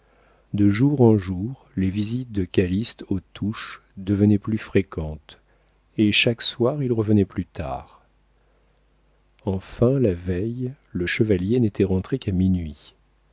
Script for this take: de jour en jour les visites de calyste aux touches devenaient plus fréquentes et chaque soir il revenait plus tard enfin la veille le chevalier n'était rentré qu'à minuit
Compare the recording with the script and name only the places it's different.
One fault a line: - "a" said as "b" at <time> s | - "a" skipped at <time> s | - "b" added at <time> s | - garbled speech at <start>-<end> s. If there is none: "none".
none